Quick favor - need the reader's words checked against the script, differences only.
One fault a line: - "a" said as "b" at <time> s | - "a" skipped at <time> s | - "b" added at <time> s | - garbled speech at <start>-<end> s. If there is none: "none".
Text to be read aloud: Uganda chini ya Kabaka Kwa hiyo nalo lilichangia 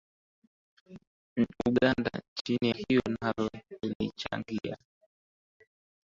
- "ya Kabaka Kwa" skipped at 2.7 s